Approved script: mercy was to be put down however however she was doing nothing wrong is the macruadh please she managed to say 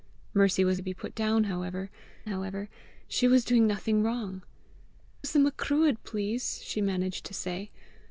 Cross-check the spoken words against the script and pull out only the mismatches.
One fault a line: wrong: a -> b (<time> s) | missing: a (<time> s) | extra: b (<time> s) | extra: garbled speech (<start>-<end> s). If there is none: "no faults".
no faults